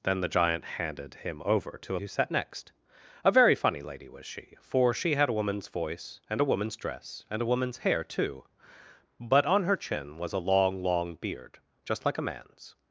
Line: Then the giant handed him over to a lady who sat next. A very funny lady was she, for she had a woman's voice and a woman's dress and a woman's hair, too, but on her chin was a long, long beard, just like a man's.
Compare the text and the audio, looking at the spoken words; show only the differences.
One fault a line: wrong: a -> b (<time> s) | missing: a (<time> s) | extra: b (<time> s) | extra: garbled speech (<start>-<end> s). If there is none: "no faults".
missing: lady (2.0 s)